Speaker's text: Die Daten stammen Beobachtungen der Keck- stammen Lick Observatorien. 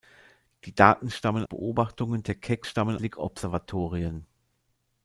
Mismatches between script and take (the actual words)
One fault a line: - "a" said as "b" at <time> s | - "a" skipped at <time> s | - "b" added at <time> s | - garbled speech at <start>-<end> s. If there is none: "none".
none